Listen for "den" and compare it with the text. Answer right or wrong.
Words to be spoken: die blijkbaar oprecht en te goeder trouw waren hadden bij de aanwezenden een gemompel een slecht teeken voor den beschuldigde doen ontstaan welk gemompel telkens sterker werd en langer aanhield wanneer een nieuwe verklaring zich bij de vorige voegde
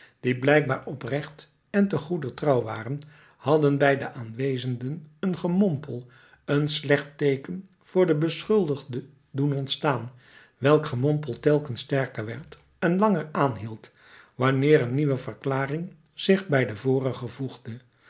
right